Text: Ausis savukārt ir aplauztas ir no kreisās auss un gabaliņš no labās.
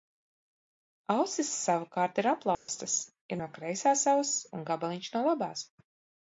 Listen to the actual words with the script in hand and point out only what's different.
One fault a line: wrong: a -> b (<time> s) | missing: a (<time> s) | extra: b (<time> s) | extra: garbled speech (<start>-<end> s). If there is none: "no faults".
no faults